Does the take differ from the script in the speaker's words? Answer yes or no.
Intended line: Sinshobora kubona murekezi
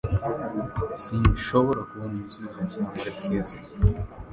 yes